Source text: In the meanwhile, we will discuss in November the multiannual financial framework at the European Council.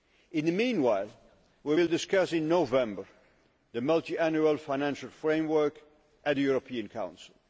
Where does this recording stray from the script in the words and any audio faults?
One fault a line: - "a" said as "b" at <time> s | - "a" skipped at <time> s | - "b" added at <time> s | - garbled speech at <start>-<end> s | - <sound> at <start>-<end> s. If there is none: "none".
none